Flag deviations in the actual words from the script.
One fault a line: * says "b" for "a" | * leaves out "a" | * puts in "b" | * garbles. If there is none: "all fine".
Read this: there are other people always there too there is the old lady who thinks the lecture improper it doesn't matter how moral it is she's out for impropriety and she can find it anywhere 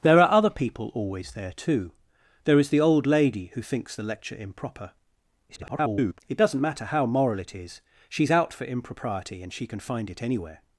* garbles